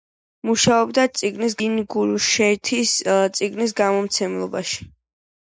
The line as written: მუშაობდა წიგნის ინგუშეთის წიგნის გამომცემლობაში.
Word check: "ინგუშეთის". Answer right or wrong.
right